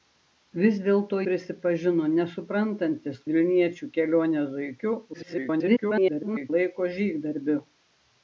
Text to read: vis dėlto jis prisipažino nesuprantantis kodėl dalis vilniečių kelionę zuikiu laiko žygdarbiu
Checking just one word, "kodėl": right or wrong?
wrong